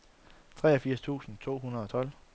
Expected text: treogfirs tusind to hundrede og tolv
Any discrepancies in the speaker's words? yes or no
no